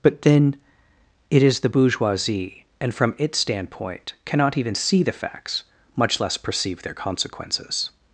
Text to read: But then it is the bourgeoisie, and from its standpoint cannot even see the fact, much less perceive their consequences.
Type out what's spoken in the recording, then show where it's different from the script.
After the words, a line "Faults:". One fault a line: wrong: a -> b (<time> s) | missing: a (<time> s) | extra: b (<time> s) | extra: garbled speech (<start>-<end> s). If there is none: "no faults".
But then it is the bourgeoisie, and from its standpoint cannot even see the facts, much less perceive their consequences.
Faults:
wrong: fact -> facts (5.1 s)